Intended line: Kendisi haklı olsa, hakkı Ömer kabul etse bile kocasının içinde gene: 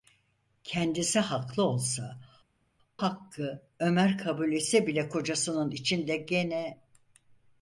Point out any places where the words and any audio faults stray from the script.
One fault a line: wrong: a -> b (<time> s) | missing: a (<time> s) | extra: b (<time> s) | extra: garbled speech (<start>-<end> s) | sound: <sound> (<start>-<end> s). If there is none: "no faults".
no faults